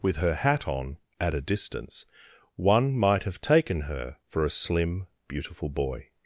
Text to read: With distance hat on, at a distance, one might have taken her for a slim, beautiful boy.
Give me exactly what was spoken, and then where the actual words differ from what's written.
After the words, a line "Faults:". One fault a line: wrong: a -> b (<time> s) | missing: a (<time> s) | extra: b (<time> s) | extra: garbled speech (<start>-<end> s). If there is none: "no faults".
With her hat on, at a distance, one might have taken her for a slim, beautiful boy.
Faults:
wrong: distance -> her (0.2 s)